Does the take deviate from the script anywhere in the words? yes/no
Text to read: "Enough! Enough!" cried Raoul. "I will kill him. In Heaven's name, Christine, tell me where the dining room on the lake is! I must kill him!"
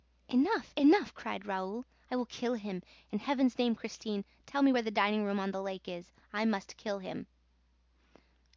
no